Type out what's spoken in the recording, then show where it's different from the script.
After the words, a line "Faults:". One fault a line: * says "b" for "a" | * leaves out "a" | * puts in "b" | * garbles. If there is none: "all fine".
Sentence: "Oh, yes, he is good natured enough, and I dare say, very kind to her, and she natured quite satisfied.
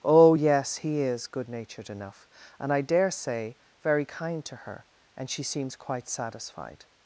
"Oh, yes, he is good natured enough, and I dare say, very kind to her, and she seems quite satisfied.
Faults:
* says "seems" for "natured"